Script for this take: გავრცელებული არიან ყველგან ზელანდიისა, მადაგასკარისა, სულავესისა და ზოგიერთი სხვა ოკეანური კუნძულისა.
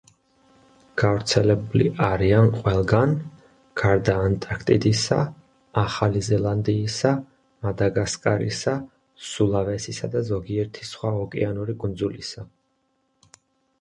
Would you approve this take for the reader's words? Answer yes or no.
no